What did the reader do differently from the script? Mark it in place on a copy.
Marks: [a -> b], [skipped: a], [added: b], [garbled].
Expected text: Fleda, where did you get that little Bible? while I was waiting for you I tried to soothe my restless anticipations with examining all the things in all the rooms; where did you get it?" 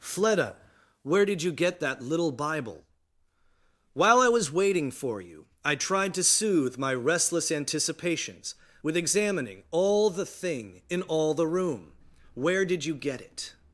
Fleda, where did you get that little Bible? while I was waiting for you I tried to soothe my restless anticipations with examining all the [things -> thing] in all the [rooms; -> room] where did you get it?"